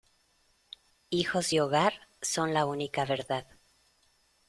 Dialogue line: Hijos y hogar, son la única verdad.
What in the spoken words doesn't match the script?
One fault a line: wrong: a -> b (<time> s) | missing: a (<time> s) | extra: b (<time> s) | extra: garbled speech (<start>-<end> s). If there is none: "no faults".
no faults